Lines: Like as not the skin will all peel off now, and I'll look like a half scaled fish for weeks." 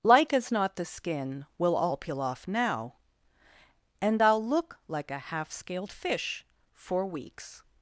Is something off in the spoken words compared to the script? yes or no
no